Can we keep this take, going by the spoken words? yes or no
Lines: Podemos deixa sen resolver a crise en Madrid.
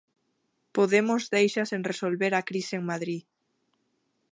yes